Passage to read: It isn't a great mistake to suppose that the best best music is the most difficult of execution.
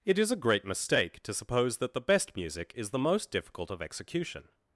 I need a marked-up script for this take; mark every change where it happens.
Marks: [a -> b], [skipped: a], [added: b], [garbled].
It [isn't -> is] a great mistake to suppose that the best [skipped: best] music is the most difficult of execution.